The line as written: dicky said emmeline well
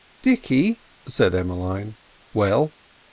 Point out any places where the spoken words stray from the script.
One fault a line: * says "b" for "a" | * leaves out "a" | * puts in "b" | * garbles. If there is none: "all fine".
all fine